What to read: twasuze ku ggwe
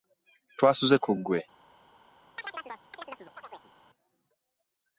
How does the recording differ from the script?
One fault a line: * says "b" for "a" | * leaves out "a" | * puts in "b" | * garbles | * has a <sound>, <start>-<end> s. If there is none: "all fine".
* has a chirp, 2.4-3.7 s